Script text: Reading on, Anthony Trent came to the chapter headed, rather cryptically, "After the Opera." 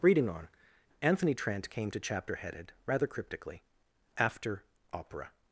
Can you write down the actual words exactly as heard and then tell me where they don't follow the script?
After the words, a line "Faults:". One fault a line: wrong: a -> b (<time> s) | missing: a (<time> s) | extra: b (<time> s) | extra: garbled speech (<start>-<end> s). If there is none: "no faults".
Reading on, Anthony Trent came to chapter headed, rather cryptically, "After Opera."
Faults:
missing: the (2.0 s)
missing: the (4.6 s)